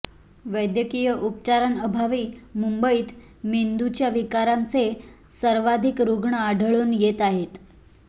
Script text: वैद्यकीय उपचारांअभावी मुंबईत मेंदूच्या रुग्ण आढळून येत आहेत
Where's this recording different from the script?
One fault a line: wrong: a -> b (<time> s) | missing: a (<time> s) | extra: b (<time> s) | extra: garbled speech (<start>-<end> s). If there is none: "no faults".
extra: विकारांचे सर्वाधिक (4.1 s)